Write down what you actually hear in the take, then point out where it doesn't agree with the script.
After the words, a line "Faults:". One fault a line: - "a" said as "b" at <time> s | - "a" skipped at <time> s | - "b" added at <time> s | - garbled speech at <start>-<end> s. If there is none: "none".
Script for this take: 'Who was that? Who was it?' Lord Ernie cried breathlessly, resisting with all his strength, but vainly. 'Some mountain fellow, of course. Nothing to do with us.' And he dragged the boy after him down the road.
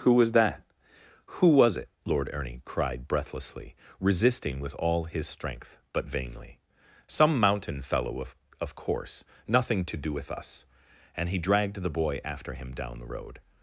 'Who was that? Who was it?' Lord Ernie cried breathlessly, resisting with all his strength, but vainly. 'Some mountain fellow, of of course. Nothing to do with us.' And he dragged the boy after him down the road.
Faults:
- "of" added at 8.6 s